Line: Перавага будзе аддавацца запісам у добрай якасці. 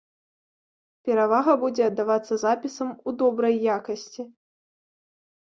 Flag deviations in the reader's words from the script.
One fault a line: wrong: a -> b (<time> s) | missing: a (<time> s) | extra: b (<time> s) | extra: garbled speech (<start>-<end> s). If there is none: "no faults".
no faults